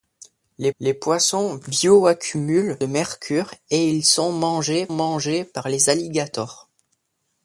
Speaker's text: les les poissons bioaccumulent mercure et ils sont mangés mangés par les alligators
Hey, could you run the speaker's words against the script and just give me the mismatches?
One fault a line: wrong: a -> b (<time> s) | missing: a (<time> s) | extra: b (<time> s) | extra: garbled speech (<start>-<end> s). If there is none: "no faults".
no faults